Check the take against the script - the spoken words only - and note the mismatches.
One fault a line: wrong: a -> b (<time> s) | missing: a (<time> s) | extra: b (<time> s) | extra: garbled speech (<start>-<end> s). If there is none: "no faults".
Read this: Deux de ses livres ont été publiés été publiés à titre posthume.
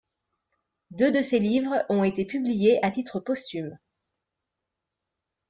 missing: été publiés (2.8 s)